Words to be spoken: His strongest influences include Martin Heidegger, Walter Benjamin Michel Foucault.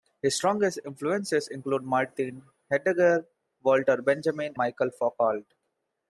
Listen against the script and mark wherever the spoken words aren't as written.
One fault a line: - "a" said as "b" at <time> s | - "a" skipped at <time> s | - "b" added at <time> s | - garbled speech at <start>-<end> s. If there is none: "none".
none